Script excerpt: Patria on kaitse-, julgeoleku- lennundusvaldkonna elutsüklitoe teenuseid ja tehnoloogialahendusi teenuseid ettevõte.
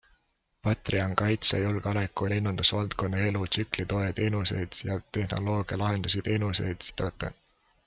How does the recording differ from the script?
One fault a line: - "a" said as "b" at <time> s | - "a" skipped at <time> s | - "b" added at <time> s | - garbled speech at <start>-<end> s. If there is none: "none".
none